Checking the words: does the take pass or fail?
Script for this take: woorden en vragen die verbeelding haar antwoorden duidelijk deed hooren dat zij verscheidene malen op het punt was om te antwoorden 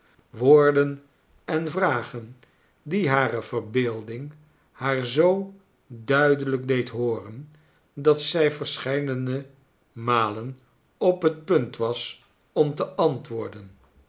fail